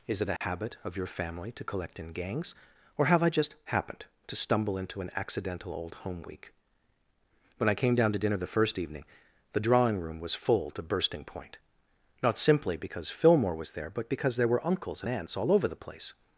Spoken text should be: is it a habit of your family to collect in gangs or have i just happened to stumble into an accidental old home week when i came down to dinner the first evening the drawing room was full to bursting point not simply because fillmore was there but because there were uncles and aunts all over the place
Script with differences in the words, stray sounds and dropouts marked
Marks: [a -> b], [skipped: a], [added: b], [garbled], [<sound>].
is it a [dropout] habit of your family to collect in gangs or have i just happened to stumble into an accidental old home week when i came down to dinner the first evening the drawing room was full to bursting point not simply because fillmore was there but because there were uncles and aunts all over the place